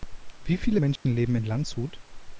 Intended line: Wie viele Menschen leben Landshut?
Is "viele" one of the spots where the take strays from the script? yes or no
no